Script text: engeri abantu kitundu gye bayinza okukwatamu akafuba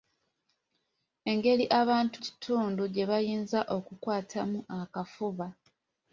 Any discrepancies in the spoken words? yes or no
no